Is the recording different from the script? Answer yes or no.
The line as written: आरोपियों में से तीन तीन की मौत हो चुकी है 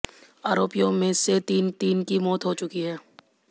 no